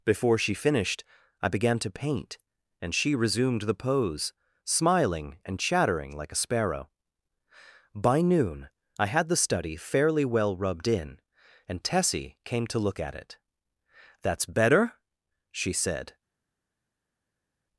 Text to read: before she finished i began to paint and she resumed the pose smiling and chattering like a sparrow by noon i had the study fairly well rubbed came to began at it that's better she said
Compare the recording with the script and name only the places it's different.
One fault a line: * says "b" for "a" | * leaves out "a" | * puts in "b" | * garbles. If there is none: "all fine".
* puts in "in and tessie"
* says "look" for "began"